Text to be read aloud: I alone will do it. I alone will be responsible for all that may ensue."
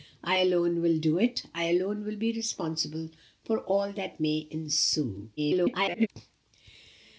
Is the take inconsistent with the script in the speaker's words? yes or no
yes